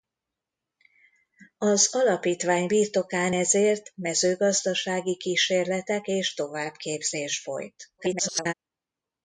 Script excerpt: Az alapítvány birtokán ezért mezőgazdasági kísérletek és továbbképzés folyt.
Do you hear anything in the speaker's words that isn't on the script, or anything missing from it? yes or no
yes